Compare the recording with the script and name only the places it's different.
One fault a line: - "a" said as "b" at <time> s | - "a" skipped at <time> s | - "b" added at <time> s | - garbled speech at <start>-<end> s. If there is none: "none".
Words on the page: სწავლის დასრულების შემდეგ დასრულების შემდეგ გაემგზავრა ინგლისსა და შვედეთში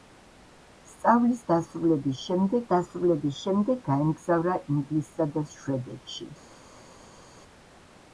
none